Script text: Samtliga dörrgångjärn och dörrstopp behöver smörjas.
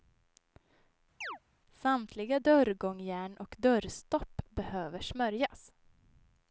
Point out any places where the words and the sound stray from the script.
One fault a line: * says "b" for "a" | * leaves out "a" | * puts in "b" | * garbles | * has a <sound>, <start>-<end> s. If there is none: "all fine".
* has a chirp, 1.2-1.4 s